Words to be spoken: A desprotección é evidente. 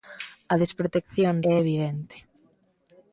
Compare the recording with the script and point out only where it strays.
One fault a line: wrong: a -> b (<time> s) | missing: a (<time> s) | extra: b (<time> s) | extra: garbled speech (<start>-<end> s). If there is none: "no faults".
no faults